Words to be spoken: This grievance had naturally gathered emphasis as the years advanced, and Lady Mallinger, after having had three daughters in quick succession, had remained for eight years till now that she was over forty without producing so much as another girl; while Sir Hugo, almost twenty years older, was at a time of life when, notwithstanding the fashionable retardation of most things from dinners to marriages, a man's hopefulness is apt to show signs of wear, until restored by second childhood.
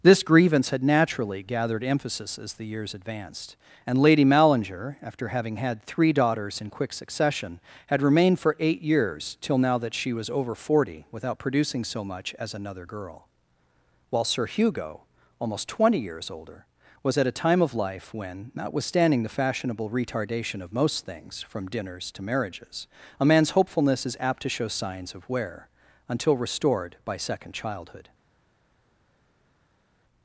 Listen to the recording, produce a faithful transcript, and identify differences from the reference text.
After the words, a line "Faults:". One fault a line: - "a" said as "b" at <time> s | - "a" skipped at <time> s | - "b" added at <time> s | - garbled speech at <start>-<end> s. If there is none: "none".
This grievance had naturally gathered emphasis as the years advanced, and Lady Mallinger, after having had three daughters in quick succession, had remained for eight years till now that she was over forty without producing so much as another girl; while Sir Hugo, almost twenty years older, was at a time of life when, notwithstanding the fashionable retardation of most things from dinners to marriages, a man's hopefulness is apt to show signs of wear, until restored by second childhood.
Faults:
none